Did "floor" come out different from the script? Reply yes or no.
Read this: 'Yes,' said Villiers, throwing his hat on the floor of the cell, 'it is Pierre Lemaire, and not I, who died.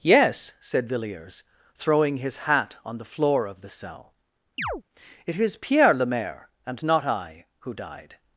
no